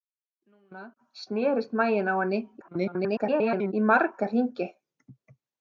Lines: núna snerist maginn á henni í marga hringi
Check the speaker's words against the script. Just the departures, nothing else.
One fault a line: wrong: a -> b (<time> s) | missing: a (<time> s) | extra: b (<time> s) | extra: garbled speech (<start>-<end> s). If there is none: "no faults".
extra: garbled speech (2.6-3.7 s)